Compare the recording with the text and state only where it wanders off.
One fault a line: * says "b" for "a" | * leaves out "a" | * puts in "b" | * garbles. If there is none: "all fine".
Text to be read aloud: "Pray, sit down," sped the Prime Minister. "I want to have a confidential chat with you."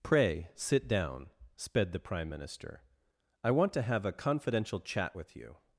all fine